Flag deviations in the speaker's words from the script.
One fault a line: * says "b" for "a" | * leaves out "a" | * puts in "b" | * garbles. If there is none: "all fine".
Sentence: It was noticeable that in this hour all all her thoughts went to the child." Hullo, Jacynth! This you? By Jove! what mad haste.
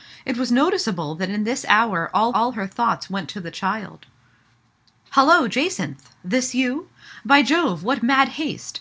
all fine